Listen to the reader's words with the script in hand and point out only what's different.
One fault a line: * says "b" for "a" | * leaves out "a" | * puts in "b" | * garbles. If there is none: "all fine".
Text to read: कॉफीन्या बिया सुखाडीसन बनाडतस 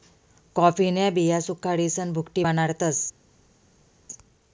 * puts in "भुकटी"